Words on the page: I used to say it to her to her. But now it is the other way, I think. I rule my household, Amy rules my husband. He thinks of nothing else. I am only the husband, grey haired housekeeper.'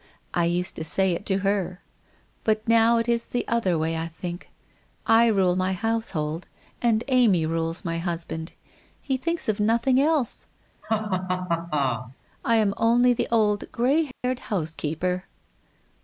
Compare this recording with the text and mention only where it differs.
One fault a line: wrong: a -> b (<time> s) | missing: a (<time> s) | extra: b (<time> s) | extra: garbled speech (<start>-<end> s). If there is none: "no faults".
missing: to her (1.8 s)
extra: and (6.8 s)
wrong: husband -> old (13.3 s)